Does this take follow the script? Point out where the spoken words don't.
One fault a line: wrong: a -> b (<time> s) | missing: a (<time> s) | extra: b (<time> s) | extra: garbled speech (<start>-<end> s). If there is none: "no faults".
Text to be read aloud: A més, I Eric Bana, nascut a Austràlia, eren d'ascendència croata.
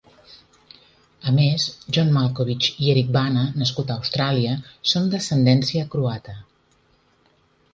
extra: John Malkovich (2.0 s)
wrong: eren -> són (4.9 s)